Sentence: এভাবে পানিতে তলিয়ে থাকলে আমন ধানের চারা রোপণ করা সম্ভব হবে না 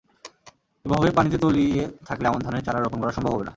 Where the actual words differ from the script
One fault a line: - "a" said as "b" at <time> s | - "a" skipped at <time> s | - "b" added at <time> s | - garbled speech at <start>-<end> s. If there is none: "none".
none